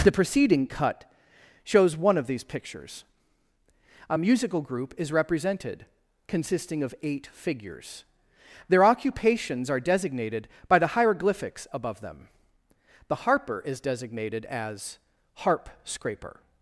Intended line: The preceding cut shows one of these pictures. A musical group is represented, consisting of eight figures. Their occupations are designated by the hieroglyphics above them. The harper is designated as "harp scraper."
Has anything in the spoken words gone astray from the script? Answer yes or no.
no